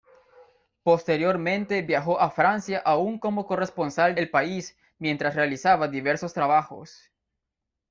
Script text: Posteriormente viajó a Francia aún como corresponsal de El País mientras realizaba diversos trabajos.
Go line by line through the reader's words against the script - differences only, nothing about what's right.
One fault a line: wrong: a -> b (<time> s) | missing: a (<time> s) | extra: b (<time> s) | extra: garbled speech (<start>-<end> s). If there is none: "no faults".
missing: de (4.2 s)